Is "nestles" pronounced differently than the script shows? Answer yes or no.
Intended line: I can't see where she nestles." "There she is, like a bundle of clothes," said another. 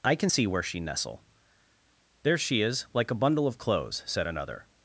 yes